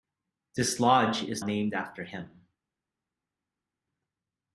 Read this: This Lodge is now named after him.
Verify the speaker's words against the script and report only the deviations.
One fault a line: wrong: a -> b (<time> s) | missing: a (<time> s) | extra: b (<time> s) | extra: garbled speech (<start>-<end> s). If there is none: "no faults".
missing: now (1.4 s)